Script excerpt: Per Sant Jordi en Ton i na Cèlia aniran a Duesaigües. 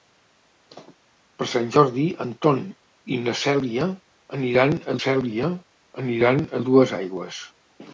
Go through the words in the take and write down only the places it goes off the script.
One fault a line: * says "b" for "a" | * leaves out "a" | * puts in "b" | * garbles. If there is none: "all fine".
* puts in "Cèlia aniran a"